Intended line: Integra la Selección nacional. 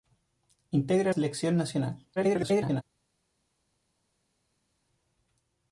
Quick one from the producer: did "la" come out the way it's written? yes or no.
no